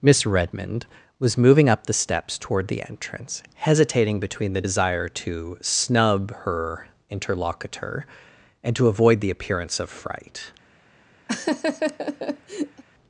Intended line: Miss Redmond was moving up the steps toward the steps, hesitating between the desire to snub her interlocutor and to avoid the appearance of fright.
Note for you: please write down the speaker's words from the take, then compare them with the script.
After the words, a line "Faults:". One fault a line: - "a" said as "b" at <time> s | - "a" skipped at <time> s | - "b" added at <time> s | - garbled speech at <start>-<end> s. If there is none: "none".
Miss Redmond was moving up the steps toward the entrance, hesitating between the desire to snub her interlocutor and to avoid the appearance of fright.
Faults:
- "steps" said as "entrance" at 2.8 s